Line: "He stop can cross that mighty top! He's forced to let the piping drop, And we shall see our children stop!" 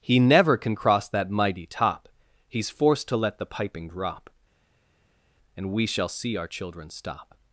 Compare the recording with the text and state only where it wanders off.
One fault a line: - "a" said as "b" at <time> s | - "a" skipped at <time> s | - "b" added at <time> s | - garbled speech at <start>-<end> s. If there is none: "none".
- "stop" said as "never" at 0.2 s